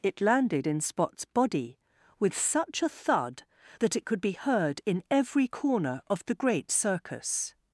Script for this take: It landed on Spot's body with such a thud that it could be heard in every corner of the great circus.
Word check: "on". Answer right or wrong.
wrong